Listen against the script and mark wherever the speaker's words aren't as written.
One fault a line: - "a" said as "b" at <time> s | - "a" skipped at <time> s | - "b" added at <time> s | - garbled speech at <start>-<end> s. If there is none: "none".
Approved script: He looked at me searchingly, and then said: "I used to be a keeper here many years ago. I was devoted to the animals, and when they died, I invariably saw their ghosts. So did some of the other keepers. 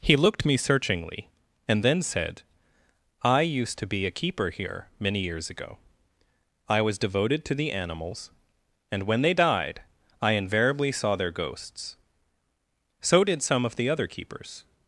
- "at" skipped at 0.5 s